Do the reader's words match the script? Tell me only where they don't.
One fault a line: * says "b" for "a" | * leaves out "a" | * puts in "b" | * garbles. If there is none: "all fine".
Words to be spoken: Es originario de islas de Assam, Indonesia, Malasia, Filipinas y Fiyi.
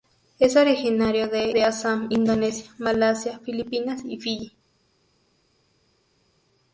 * leaves out "islas"